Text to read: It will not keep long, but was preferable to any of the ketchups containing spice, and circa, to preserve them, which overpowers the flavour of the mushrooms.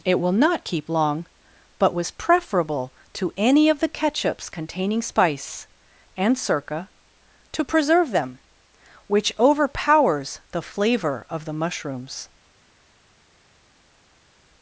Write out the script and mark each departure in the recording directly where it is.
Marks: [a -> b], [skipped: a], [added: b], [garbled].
It will not keep long, but was preferable to any of the ketchups containing spice, and circa, to preserve them, which overpowers the flavour of the mushrooms.